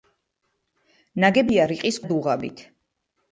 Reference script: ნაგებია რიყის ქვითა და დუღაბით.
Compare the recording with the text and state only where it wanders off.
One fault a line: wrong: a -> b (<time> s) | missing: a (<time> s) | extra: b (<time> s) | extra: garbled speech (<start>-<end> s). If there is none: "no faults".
missing: ქვითა (2.0 s)